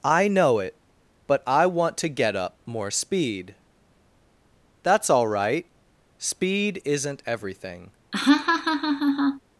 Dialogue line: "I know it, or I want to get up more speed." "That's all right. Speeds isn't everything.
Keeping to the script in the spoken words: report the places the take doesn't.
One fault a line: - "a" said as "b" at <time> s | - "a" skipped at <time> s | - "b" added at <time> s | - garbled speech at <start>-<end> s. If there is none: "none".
- "or" said as "but" at 1.3 s
- "Speeds" said as "Speed" at 6.2 s